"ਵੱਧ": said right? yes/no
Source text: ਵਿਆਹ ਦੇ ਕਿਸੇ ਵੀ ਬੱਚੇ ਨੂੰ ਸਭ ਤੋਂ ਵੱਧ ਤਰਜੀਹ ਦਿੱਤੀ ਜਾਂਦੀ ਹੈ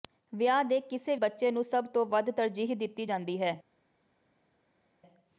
yes